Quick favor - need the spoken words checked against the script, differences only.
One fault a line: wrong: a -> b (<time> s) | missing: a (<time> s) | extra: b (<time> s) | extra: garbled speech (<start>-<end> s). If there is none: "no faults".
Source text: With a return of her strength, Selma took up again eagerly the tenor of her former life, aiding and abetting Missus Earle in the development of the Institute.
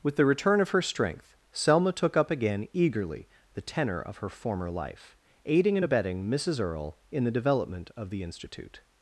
wrong: a -> the (0.1 s)